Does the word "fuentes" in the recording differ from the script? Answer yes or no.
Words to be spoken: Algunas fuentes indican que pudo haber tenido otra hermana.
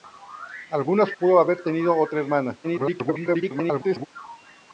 yes